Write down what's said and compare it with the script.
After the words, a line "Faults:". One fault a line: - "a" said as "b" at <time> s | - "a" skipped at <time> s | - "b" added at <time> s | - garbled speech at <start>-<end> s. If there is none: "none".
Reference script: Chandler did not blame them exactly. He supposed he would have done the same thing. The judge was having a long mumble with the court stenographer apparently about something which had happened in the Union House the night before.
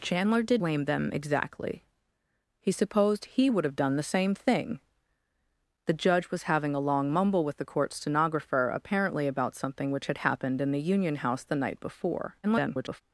Chandler did blame them exactly. He supposed he would have done the same thing. The judge was having a long mumble with the court stenographer apparently about something which had happened in the Union House the night before. [garbled]
Faults:
- "not" skipped at 0.6 s
- garbled speech at 12.4-13.0 s